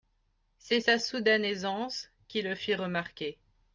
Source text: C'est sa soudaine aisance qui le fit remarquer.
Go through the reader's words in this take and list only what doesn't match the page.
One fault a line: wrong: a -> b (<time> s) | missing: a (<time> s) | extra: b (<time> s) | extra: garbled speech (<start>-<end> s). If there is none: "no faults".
no faults